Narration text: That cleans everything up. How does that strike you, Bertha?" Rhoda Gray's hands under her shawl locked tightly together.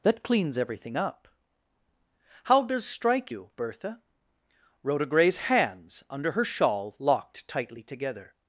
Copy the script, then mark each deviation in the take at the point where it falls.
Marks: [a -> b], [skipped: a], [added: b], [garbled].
That cleans everything up. How does [skipped: that] strike you, Bertha?" Rhoda Gray's hands under her shawl locked tightly together.